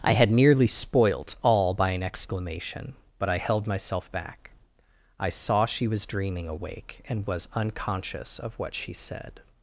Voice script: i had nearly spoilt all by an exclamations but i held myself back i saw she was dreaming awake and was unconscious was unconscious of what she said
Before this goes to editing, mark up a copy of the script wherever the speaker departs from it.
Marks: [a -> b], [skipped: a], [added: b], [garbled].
i had nearly spoilt all by an [exclamations -> exclamation] but i held myself back i saw she was dreaming awake and was unconscious [skipped: was unconscious] of what she said